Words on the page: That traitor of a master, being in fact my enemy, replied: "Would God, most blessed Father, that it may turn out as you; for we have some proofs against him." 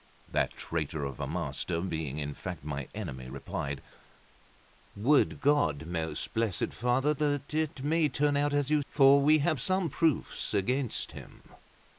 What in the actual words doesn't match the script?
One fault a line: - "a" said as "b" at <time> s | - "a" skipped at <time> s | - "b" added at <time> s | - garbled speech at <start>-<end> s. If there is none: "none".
none